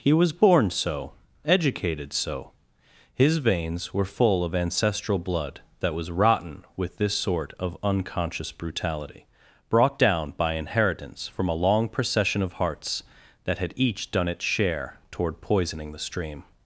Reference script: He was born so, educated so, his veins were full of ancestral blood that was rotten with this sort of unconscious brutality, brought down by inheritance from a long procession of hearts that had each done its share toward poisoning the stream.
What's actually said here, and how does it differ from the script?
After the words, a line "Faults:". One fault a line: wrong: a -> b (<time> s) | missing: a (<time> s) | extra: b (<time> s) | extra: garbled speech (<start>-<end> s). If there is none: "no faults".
He was born so, educated so, his veins were full of ancestral blood that was rotten with this sort of unconscious brutality, brought down by inheritance from a long procession of hearts that had each done its share toward poisoning the stream.
Faults:
no faults